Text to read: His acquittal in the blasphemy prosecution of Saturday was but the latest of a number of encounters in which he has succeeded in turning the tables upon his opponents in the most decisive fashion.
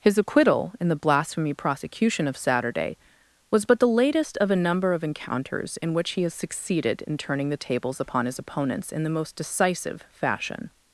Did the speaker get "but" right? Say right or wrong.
right